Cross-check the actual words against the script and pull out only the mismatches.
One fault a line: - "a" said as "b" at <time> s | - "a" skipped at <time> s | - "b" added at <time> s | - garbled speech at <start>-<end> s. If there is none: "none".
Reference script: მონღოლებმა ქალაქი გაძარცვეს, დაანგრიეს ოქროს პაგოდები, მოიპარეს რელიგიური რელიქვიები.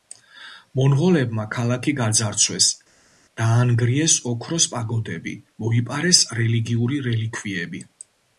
none